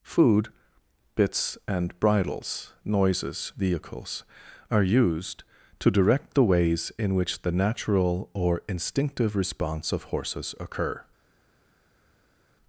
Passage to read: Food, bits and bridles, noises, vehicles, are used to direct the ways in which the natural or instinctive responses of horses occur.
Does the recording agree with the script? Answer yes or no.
no